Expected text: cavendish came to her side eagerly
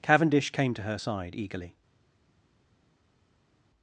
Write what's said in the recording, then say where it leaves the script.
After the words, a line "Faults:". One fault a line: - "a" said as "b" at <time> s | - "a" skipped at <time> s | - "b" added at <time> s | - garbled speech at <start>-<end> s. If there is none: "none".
cavendish came to her side eagerly
Faults:
none